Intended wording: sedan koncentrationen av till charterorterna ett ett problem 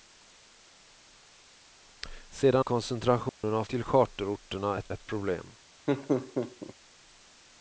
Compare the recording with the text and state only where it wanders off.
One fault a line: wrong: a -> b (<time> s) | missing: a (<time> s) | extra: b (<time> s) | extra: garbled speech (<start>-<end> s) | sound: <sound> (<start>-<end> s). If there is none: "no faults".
sound: dropout (3.3-3.4 s)
sound: laugh (5.9-6.7 s)